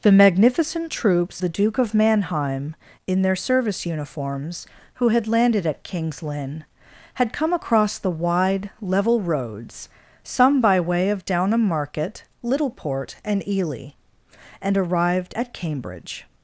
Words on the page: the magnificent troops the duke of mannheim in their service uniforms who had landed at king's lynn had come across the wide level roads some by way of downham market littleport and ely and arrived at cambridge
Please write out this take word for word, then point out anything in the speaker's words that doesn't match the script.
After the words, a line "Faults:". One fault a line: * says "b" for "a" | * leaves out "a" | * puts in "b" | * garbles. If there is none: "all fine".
the magnificent troops the duke of mannheim in their service uniforms who had landed at king's lynn had come across the wide level roads some by way of downham market littleport and ely and arrived at cambridge
Faults:
all fine